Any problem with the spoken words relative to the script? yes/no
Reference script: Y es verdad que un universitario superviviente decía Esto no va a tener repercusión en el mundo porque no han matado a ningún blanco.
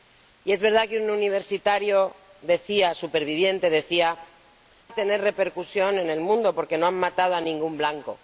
yes